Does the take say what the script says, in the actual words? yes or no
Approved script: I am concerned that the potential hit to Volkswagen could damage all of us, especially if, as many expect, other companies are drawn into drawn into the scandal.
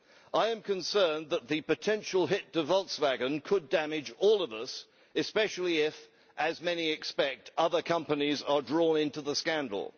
no